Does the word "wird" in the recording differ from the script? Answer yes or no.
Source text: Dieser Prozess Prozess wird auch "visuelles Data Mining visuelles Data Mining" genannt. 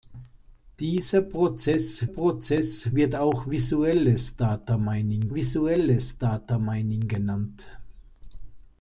no